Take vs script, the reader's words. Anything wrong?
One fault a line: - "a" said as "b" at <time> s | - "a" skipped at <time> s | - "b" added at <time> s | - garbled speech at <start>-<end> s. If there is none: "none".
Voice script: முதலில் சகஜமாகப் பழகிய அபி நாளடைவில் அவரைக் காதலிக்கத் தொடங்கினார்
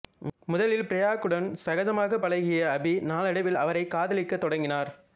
- "பிரக்யாவுடன்" added at 0.8 s